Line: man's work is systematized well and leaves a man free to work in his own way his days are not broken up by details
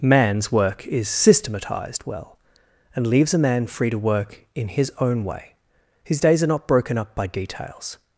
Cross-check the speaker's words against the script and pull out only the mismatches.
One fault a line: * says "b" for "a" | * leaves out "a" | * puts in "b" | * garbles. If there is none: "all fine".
all fine